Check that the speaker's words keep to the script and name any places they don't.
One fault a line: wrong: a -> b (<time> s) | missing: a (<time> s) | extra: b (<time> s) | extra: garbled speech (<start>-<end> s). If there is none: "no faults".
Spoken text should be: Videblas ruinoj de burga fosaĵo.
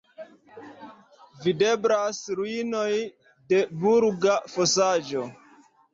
no faults